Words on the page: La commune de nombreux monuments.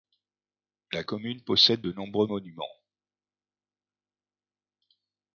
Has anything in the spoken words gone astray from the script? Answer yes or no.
yes